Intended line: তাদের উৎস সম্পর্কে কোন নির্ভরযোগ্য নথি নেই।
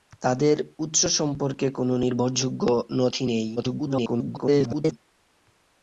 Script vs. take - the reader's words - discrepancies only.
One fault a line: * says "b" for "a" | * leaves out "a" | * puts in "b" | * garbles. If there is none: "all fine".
* garbles